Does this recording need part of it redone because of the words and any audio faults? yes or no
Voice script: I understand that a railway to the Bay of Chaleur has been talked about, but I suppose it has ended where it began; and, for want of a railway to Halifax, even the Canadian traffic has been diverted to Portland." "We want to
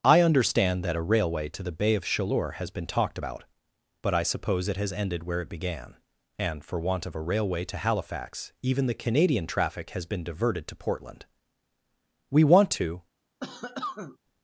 yes